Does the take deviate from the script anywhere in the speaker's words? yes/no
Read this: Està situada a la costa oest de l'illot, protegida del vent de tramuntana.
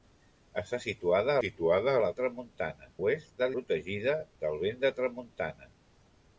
yes